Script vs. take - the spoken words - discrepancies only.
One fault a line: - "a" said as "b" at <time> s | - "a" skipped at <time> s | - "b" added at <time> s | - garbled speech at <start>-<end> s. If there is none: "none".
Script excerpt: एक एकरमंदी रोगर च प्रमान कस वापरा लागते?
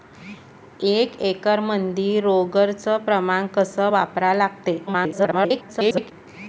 - garbled speech at 4.9-6.1 s